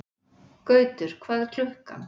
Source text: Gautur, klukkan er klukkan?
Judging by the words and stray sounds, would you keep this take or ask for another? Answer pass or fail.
fail